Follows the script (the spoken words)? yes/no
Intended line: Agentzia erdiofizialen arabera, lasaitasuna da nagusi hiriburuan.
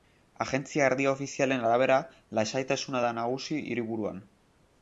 yes